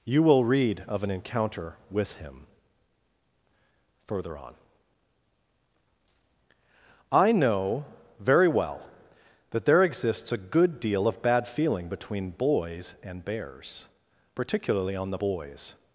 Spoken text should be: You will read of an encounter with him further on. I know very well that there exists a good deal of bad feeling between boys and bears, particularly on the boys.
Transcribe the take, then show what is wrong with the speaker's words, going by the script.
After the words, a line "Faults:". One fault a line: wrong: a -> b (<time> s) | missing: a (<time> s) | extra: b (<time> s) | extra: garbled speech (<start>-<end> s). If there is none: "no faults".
You will read of an encounter with him further on. I know very well that there exists a good deal of bad feeling between boys and bears, particularly on the boys.
Faults:
no faults